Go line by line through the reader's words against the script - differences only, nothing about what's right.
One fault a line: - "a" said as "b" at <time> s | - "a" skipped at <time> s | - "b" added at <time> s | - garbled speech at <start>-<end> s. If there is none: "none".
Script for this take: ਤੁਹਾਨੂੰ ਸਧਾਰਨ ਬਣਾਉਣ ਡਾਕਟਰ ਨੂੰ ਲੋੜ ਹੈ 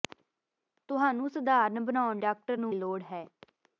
none